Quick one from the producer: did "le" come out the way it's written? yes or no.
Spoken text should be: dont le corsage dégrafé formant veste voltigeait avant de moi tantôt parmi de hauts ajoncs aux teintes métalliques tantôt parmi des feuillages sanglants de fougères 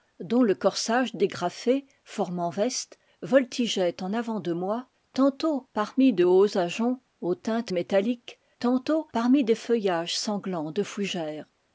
yes